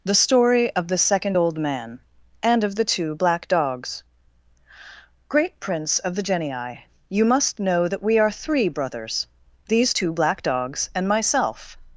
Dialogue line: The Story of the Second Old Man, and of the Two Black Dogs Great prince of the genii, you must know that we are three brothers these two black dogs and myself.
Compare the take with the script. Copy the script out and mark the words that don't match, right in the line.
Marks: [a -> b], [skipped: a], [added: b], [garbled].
The Story of the Second Old Man, and of the Two Black Dogs Great prince of the genii, you must know that we are three brothers these two black dogs and myself.